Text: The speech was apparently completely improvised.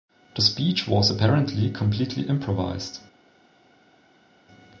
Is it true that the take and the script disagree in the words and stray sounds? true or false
false